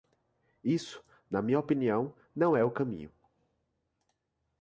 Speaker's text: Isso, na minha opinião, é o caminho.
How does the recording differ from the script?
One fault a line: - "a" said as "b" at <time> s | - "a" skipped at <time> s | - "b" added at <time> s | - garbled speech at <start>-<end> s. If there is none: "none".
- "não" added at 2.3 s